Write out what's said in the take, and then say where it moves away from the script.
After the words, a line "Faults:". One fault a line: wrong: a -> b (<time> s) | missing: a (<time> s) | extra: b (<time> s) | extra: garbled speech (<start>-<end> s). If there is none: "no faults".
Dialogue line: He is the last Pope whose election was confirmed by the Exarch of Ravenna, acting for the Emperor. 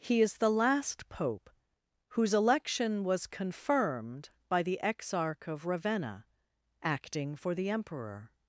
He is the last Pope whose election was confirmed by the Exarch of Ravenna, acting for the Emperor.
Faults:
no faults